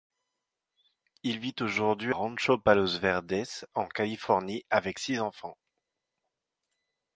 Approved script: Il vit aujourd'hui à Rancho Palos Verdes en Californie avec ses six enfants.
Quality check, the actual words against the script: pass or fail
fail